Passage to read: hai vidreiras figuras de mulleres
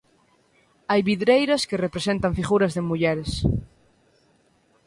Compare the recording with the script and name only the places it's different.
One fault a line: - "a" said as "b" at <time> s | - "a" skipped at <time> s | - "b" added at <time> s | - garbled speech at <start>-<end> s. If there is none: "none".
- "que representan" added at 1.7 s